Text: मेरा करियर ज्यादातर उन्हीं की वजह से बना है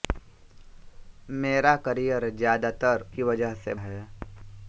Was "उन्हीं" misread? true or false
true